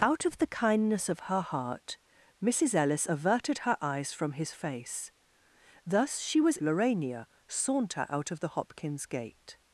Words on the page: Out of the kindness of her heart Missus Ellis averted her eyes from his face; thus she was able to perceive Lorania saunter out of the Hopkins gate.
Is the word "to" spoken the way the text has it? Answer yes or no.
no